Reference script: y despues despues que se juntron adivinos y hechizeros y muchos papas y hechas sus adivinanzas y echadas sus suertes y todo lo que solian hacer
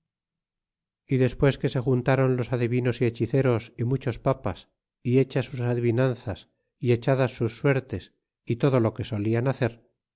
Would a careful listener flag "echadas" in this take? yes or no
no